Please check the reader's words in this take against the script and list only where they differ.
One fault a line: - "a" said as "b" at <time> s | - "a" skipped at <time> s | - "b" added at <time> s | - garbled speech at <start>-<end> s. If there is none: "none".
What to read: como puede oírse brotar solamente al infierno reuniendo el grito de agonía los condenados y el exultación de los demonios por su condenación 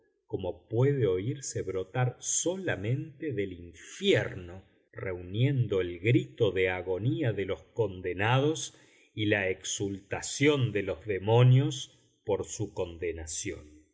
- "al" said as "del" at 3.3 s
- "de" added at 7.3 s
- "el" said as "la" at 9.3 s